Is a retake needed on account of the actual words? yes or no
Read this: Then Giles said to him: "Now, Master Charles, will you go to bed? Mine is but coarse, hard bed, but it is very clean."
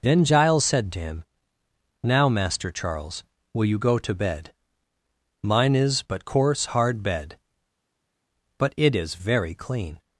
no